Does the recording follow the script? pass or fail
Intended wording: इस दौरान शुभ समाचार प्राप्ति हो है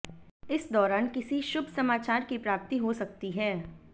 fail